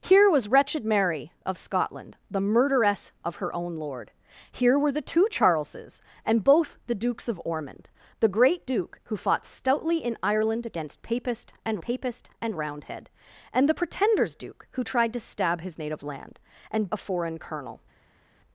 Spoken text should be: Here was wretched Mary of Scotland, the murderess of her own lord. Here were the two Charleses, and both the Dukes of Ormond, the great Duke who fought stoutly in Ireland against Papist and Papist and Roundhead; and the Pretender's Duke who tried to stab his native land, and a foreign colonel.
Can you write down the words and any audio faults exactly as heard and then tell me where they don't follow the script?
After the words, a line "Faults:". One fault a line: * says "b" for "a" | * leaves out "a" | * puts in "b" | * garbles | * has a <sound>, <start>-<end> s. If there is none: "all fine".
Here was wretched Mary of Scotland, the murderess of her own lord. Here were the two Charleses, and both the Dukes of Ormond, the great Duke who fought stoutly in Ireland against Papist and Papist and Roundhead; and the Pretender's Duke who tried to stab his native land, and a foreign colonel.
Faults:
all fine